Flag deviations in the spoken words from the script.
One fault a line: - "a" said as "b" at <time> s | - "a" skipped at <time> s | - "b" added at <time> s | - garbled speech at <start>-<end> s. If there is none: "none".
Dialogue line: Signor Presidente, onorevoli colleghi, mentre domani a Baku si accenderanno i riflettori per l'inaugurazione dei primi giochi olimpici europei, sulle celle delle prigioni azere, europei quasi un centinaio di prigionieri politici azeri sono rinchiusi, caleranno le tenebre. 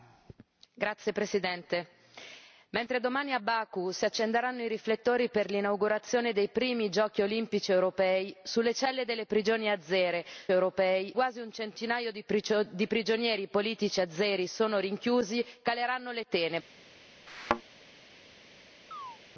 none